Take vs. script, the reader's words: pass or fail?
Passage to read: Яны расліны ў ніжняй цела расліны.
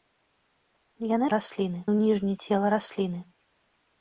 pass